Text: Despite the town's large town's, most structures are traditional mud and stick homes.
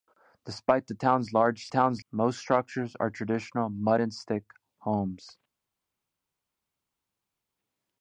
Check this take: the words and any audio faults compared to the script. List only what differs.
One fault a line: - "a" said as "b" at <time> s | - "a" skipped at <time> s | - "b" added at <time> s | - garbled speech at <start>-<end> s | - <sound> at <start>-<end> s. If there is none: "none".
none